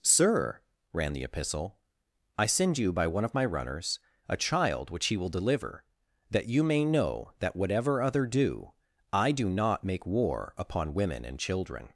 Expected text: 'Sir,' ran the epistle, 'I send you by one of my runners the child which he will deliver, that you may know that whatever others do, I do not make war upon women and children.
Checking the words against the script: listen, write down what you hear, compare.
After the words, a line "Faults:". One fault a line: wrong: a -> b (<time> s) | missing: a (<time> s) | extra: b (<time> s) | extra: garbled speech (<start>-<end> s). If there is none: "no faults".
'Sir,' ran the epistle, 'I send you by one of my runners a child which he will deliver, that you may know that whatever other do, I do not make war upon women and children.
Faults:
wrong: the -> a (4.3 s)
wrong: others -> other (8.0 s)